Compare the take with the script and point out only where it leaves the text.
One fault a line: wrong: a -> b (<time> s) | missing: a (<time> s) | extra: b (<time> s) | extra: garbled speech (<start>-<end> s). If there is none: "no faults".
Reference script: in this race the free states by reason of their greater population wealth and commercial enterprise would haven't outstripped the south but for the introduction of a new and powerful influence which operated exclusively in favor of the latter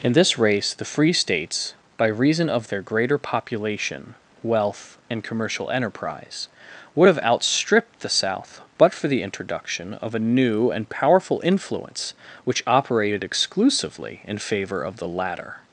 wrong: haven't -> have (7.0 s)